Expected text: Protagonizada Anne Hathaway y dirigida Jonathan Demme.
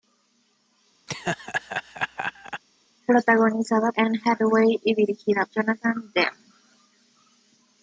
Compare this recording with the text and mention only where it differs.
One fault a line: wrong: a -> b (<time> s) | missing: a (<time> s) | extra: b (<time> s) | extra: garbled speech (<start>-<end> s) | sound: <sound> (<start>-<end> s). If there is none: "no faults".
sound: laugh (1.1-2.6 s)